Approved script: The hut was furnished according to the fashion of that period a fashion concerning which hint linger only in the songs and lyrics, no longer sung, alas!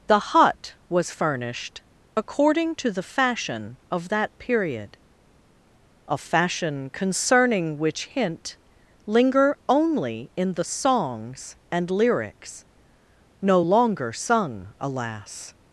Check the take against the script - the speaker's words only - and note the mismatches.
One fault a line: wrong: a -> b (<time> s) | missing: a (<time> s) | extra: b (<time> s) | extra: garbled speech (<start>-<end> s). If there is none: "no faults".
no faults